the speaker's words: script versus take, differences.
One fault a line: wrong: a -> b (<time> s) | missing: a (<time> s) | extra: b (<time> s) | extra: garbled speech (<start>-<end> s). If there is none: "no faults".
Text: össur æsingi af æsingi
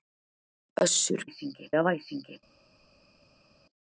no faults